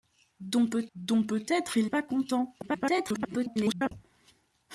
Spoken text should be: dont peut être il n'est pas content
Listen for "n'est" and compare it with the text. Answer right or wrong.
wrong